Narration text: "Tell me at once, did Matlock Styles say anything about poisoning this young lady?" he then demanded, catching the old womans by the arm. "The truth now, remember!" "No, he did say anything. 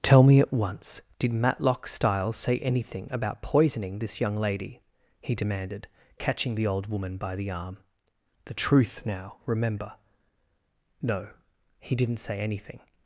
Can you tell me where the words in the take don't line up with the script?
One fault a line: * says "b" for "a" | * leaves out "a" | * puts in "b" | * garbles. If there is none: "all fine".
* leaves out "then"
* says "woman" for "womans"
* says "didn't" for "did"